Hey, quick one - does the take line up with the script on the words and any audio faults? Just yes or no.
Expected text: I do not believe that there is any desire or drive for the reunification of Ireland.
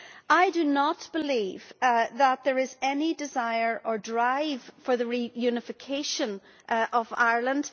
yes